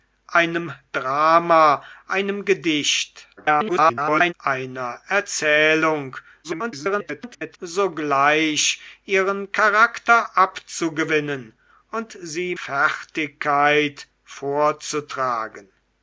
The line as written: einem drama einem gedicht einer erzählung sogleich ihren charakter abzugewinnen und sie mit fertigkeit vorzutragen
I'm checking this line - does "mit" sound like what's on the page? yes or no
no